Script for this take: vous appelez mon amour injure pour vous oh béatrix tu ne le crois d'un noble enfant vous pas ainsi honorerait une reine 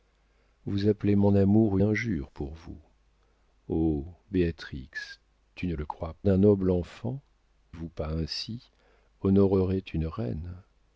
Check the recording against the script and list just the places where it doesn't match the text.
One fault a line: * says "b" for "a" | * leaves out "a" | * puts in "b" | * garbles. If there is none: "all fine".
all fine